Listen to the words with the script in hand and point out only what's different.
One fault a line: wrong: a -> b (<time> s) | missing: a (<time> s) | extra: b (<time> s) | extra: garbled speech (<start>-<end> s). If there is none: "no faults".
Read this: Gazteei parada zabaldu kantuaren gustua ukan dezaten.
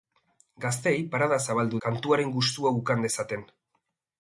no faults